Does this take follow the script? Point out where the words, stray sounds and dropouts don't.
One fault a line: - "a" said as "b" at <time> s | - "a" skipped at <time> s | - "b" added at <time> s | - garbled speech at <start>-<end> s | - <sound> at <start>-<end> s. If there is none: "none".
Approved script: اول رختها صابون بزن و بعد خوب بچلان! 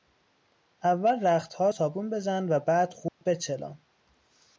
- dropout at 3.1-3.2 s